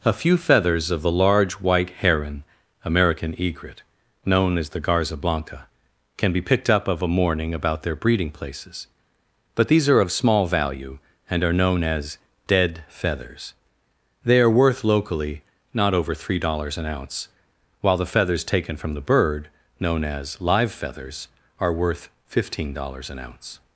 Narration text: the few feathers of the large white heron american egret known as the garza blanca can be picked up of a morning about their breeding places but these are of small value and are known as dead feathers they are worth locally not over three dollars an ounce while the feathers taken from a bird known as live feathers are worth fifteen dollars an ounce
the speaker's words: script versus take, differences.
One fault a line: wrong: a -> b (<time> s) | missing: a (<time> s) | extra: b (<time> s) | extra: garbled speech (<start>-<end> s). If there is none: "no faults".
wrong: the -> a (0.0 s)
wrong: a -> the (18.9 s)